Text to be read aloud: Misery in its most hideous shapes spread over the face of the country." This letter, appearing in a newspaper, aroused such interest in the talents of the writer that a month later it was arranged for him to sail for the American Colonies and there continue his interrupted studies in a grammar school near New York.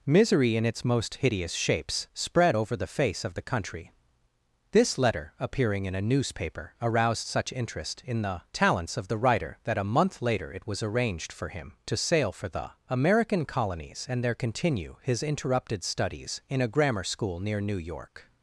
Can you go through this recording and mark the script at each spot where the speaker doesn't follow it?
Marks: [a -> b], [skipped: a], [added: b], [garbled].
Misery in its most hideous shapes spread over the face of the country." This letter, appearing in a newspaper, aroused such interest in the talents of the writer that a month later it was arranged for him to sail for the American Colonies and there continue his interrupted studies in a grammar school near New York.